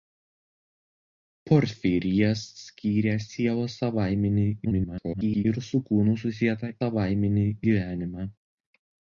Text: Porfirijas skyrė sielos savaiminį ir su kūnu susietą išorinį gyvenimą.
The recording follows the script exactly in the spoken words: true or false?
false